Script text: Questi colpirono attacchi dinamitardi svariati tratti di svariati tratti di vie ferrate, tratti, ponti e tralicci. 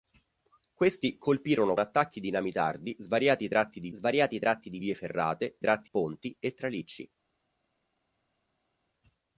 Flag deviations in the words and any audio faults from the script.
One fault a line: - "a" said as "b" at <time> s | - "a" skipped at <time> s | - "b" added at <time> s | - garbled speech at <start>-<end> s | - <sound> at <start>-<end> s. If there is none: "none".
none